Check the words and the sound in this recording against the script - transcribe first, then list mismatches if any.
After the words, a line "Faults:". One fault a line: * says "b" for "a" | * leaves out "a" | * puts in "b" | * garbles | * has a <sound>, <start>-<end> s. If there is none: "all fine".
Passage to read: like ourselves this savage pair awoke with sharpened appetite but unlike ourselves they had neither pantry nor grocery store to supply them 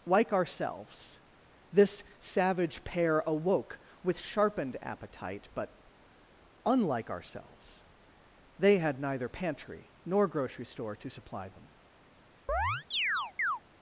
like ourselves this savage pair awoke with sharpened appetite but unlike ourselves they had neither pantry nor grocery store to supply them
Faults:
* has a chirp, 12.5-13.6 s